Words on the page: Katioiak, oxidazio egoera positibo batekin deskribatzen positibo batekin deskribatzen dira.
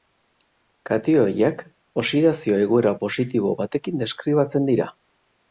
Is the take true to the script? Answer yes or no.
no